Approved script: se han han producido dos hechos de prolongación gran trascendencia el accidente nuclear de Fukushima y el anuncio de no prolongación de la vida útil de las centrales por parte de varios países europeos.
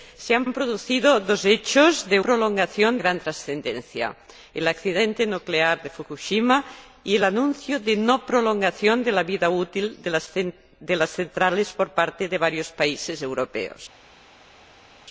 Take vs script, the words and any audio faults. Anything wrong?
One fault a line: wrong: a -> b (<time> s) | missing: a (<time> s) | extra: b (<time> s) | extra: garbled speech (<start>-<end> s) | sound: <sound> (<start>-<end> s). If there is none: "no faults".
no faults